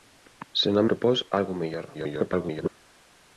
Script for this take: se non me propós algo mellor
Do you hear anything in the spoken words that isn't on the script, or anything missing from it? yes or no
yes